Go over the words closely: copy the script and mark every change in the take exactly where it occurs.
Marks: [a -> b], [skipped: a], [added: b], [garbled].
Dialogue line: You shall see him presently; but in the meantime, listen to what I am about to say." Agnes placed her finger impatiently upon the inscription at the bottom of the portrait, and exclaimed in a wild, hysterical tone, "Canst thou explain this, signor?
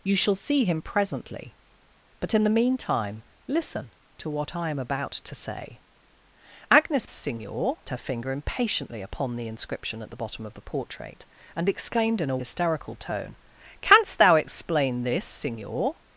You shall see him presently; but in the meantime, listen to what I am about to say." Agnes [placed -> signor] her finger impatiently upon the inscription at the bottom of the portrait, and exclaimed in a [skipped: wild,] hysterical tone, "Canst thou explain this, signor?